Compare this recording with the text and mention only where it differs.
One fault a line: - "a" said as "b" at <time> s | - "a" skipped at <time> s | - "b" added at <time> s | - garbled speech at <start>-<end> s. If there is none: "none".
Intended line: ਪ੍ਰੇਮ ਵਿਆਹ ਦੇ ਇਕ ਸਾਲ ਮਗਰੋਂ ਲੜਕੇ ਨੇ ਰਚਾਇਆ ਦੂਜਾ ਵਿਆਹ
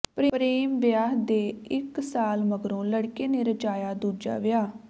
none